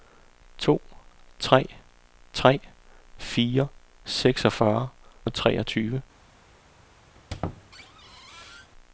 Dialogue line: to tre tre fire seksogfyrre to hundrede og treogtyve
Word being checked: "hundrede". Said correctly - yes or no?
no